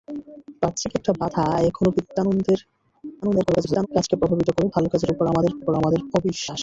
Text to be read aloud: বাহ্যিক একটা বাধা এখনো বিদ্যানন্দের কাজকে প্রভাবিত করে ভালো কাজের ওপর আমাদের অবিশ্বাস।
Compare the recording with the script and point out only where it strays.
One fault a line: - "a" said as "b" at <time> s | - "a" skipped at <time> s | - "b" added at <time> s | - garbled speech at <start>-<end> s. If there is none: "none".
- garbled speech at 3.2-3.9 s
- "ওপর আমাদের" added at 5.6 s